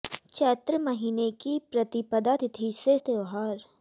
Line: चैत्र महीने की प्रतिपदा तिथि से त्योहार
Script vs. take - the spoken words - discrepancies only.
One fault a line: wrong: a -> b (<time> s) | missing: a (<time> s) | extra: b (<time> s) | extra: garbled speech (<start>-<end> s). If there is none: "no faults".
no faults